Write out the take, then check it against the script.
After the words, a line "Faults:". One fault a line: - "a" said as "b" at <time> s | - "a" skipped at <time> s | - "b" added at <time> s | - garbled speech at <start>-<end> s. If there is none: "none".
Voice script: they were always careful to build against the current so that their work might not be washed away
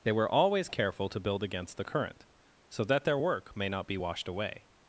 they were always careful to build against the current so that their work may not be washed away
Faults:
- "might" said as "may" at 3.6 s